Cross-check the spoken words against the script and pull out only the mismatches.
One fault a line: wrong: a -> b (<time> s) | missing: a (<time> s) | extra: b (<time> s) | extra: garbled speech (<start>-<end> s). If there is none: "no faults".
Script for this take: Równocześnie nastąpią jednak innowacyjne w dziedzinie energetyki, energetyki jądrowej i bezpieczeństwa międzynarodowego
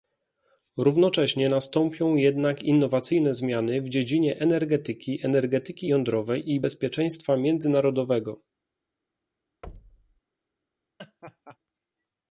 extra: zmiany (3.3 s)